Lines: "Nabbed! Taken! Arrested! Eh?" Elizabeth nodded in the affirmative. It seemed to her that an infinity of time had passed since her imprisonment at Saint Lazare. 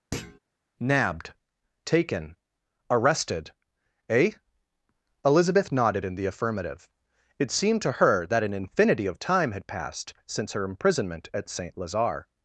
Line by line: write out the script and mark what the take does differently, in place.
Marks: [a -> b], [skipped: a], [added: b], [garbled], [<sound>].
[thud] "Nabbed! Taken! Arrested! Eh?" Elizabeth nodded in the affirmative. It seemed to her that an infinity of time had passed since her imprisonment at Saint Lazare.